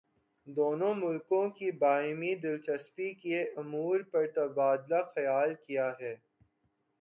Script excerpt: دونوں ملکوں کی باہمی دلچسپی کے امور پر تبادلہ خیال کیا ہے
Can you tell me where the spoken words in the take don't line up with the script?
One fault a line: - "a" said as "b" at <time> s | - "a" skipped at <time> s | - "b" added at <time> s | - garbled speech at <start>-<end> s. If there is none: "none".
none